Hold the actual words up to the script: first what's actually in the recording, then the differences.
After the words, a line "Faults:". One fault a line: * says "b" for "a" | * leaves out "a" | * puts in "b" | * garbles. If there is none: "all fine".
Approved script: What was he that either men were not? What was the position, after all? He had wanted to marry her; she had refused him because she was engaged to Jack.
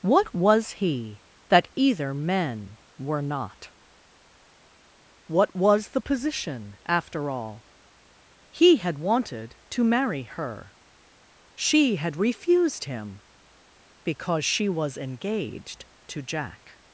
What was he that either men were not? What was the position, after all? He had wanted to marry her; she had refused him because she was engaged to Jack.
Faults:
all fine